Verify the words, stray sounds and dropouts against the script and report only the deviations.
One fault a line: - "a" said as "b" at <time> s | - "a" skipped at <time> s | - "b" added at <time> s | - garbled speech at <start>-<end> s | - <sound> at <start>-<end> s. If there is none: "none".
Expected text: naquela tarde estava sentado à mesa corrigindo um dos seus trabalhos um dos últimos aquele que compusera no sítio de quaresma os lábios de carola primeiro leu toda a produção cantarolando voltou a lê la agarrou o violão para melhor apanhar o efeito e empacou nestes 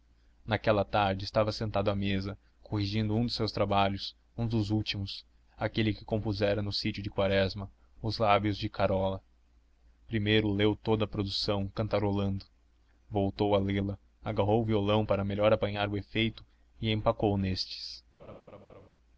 - laugh at 18.2-18.9 s